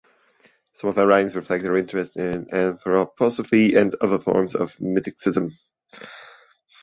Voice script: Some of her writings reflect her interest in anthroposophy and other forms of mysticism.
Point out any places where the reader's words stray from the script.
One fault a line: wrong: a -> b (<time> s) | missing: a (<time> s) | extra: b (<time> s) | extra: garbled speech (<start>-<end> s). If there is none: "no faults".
no faults